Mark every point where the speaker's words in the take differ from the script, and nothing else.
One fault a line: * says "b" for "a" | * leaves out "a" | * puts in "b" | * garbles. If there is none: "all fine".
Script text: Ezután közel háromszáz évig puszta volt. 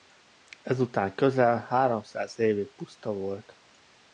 all fine